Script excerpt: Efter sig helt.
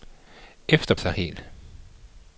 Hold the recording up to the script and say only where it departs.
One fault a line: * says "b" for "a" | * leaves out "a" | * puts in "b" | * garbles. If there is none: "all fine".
all fine